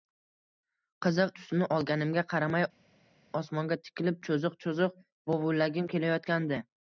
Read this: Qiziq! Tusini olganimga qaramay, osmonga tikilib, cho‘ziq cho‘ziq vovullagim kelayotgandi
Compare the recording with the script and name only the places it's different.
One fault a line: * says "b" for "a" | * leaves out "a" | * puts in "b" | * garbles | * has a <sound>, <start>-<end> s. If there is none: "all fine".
all fine